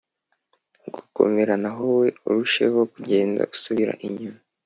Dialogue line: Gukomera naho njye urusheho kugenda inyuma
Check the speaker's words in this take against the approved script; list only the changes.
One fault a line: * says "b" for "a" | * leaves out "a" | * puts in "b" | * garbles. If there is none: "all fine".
* says "wowe" for "njye"
* puts in "usubira"